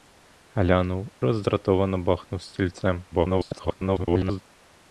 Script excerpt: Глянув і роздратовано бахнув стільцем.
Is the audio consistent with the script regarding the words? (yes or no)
no